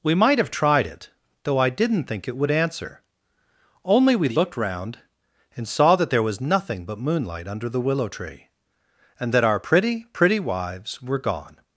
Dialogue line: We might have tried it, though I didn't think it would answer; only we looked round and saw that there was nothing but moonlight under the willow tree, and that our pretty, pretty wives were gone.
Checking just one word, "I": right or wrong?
right